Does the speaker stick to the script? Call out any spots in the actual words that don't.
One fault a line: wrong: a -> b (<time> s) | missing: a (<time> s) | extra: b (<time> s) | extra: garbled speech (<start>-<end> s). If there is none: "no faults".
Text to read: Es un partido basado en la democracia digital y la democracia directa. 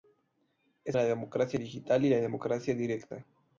missing: un partido basado (1.0 s)